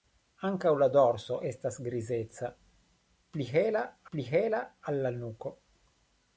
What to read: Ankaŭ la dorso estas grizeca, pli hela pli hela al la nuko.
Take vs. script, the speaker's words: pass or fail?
pass